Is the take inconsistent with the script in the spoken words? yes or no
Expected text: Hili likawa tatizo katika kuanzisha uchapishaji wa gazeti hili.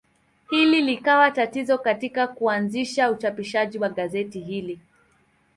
no